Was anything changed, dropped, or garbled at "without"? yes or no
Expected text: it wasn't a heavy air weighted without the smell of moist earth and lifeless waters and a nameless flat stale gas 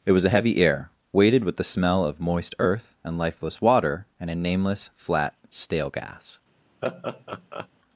yes